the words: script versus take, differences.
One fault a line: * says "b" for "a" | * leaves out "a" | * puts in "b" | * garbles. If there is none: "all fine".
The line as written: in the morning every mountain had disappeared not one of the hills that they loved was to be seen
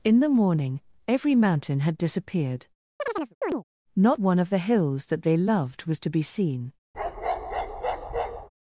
all fine